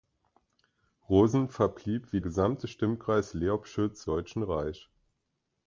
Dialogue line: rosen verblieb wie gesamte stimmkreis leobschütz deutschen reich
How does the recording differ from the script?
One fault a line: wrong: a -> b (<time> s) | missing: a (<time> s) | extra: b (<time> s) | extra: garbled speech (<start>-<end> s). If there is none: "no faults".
no faults